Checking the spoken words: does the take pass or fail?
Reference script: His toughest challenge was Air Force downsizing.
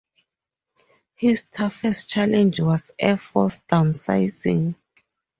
pass